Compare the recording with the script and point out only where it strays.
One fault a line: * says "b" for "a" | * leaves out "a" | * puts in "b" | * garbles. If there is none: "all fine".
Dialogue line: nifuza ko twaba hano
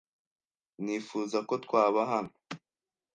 all fine